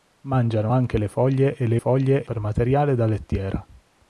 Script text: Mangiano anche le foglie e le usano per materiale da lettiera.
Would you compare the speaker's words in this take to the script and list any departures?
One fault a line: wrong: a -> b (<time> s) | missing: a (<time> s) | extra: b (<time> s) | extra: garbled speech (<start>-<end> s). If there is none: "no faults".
wrong: usano -> foglie (1.8 s)